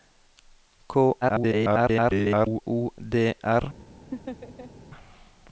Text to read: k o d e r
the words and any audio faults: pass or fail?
fail